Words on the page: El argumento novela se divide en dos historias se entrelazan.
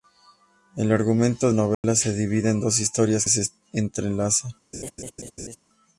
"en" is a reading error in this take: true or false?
false